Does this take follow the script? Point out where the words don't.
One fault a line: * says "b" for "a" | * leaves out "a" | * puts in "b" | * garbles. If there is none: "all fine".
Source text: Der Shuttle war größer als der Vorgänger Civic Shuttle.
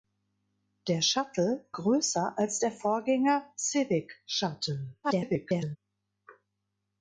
* leaves out "war"
* garbles